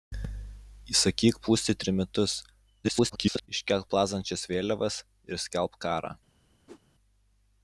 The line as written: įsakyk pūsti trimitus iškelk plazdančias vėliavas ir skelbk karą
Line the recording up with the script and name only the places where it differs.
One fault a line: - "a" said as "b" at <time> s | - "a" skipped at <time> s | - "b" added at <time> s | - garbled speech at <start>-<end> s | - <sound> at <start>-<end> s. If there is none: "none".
- garbled speech at 2.8-3.5 s
- whoosh at 6.7-6.8 s